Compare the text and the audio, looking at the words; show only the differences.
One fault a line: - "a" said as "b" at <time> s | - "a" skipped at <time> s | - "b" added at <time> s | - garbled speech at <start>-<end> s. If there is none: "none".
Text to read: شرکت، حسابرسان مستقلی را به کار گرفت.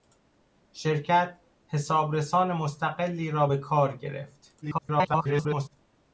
- garbled speech at 4.6-5.8 s